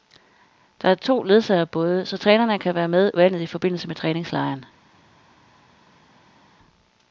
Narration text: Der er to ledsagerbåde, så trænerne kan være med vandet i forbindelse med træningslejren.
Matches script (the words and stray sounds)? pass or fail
pass